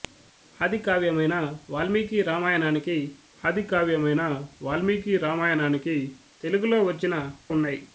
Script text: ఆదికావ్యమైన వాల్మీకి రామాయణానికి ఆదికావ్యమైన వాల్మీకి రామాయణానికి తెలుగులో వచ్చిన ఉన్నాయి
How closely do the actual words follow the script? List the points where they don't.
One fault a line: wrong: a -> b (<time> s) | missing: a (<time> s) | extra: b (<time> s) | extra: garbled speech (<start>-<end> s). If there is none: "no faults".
no faults